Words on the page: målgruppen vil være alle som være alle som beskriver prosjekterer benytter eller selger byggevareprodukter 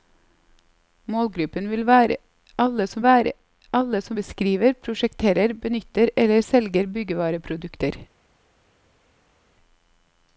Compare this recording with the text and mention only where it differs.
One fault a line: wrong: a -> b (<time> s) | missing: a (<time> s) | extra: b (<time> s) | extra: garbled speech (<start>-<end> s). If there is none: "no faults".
no faults